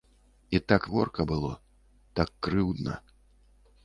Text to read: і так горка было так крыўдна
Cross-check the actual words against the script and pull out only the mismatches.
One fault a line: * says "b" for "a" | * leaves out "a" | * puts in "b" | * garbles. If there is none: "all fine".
all fine